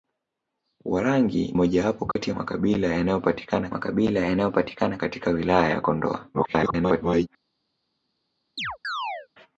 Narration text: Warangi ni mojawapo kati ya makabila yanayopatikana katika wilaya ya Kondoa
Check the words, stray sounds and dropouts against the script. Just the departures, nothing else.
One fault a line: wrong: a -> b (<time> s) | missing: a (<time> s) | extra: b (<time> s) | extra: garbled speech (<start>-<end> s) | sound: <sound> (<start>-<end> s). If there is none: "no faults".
missing: ni (1.5 s)
sound: dropout (2.1-2.2 s)
extra: makabila yanayopatikana (3.7 s)
extra: garbled speech (6.3-7.3 s)
sound: chirp (8.6-9.3 s)